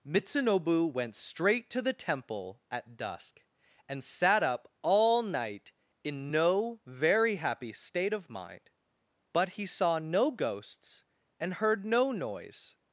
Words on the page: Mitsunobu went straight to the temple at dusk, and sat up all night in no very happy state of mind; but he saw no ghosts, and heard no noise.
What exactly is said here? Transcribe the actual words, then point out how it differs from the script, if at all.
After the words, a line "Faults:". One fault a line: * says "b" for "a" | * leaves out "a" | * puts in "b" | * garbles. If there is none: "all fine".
Mitsunobu went straight to the temple at dusk, and sat up all night in no very happy state of mind; but he saw no ghosts, and heard no noise.
Faults:
all fine